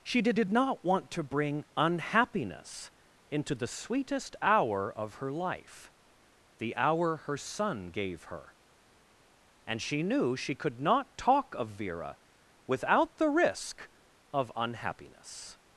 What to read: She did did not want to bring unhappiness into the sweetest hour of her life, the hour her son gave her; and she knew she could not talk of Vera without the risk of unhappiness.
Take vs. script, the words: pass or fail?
pass